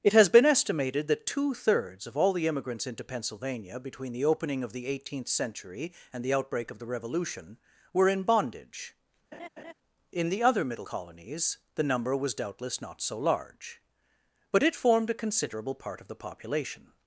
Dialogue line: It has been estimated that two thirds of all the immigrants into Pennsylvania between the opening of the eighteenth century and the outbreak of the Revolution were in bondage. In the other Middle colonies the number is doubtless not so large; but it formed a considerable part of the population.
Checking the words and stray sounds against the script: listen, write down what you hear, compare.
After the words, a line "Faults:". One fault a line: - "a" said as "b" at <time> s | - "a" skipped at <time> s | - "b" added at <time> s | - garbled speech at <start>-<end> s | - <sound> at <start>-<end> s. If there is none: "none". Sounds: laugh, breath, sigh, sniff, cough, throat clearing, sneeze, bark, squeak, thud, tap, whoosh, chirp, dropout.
It has been estimated that two thirds of all the immigrants into Pennsylvania between the opening of the eighteenth century and the outbreak of the Revolution were in bondage. In the other Middle colonies the number was doubtless not so large; but it formed a considerable part of the population.
Faults:
- laugh at 9.3-9.7 s
- "is" said as "was" at 12.2 s